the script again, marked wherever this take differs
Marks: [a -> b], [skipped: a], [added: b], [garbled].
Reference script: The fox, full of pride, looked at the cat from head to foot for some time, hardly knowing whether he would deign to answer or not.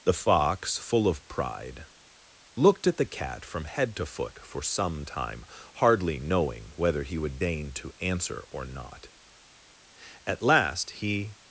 The fox, full of pride, looked at the cat from head to foot for some time, hardly knowing whether he would deign to answer or not. [added: At last he]